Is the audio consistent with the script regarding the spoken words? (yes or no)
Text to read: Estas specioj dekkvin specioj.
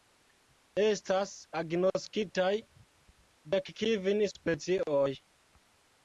no